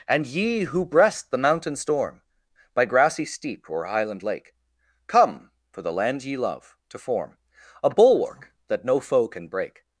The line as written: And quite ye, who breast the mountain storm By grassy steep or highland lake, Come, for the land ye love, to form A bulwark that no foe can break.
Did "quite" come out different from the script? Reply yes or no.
yes